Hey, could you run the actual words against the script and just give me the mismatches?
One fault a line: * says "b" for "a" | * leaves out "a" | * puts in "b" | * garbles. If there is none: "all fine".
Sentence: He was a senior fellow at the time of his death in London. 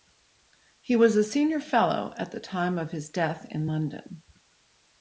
all fine